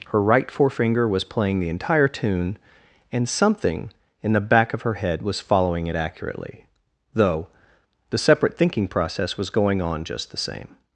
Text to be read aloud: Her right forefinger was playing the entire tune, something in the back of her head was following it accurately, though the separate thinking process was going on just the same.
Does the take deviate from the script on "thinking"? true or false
false